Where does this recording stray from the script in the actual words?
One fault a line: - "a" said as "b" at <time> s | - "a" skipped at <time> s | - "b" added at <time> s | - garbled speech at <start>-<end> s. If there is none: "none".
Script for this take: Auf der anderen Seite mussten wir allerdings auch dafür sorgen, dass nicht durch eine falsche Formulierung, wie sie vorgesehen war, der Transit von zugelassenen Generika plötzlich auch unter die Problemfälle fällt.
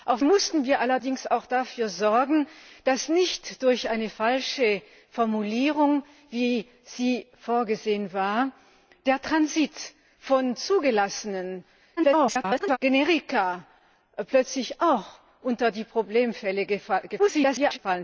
- "der anderen Seite" skipped at 0.2 s
- garbled speech at 12.0-12.8 s
- garbled speech at 17.2-17.8 s